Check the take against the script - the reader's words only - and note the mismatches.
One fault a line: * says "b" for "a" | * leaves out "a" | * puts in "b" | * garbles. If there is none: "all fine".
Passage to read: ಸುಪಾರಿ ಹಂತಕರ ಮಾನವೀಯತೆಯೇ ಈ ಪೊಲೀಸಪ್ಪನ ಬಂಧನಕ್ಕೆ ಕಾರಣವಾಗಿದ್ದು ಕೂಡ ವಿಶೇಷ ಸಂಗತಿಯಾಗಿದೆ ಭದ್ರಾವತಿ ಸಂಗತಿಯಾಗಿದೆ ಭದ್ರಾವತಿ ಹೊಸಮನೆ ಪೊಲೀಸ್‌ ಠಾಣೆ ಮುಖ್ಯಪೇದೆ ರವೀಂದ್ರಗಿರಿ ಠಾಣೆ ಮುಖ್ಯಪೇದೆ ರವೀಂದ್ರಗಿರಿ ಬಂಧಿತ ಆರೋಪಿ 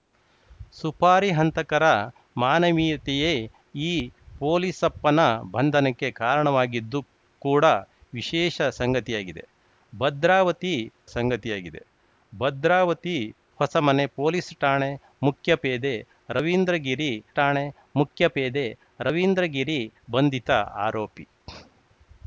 all fine